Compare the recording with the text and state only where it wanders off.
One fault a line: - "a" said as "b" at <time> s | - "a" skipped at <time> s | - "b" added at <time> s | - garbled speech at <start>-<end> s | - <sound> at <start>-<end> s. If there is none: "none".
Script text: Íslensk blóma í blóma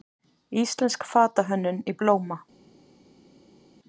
- "blóma" said as "fatahönnun" at 1.1 s